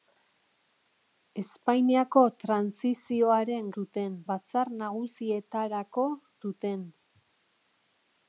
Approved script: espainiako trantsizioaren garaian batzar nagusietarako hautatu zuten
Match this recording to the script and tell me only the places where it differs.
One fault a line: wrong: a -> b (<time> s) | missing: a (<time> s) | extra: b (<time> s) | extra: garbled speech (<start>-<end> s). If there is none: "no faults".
wrong: garaian -> zuten (3.7 s)
missing: hautatu (6.1 s)